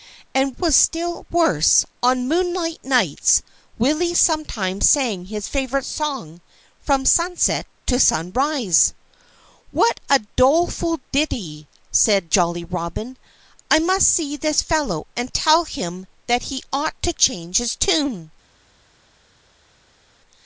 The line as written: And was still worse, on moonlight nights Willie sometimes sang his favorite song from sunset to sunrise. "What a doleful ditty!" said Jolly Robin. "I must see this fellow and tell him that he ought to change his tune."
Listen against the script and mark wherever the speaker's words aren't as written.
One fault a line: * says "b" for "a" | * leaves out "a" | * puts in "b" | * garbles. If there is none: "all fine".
all fine